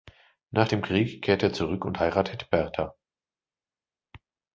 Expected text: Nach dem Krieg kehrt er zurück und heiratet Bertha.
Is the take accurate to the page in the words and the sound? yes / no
yes